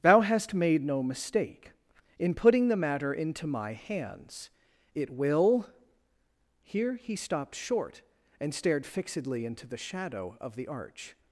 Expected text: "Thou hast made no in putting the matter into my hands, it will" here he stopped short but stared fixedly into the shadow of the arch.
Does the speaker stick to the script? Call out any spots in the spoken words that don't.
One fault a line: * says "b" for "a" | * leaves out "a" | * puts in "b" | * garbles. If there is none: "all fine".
* puts in "mistake"
* says "and" for "but"